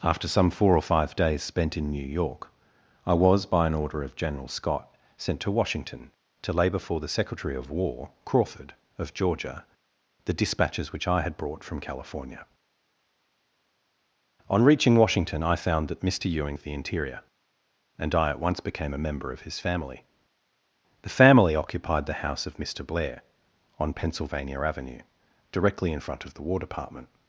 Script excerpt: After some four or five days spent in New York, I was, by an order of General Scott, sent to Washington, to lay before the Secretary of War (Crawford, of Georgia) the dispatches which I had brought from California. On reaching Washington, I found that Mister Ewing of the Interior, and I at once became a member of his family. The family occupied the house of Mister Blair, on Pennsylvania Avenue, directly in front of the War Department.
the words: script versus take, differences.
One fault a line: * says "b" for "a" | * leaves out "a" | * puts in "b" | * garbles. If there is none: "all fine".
all fine